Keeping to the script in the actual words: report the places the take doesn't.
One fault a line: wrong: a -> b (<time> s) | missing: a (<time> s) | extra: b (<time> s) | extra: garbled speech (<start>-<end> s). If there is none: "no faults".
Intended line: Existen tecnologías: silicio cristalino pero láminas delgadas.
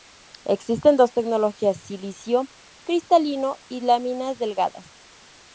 extra: dos (1.0 s)
wrong: pero -> y (3.7 s)